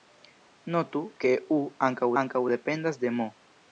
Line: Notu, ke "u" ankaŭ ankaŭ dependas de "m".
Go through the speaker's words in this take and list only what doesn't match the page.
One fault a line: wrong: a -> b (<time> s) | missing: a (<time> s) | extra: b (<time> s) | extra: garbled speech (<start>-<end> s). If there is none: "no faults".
no faults